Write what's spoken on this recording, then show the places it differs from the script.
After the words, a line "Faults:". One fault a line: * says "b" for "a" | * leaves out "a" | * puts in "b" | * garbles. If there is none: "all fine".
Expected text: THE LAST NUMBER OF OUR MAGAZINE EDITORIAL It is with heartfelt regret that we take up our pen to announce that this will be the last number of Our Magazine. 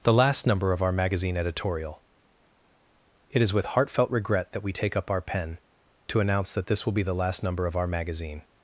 THE LAST NUMBER OF OUR MAGAZINE EDITORIAL It is with heartfelt regret that we take up our pen to announce that this will be the last number of Our Magazine.
Faults:
all fine